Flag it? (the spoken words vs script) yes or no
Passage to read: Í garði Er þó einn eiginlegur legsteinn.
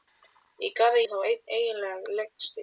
no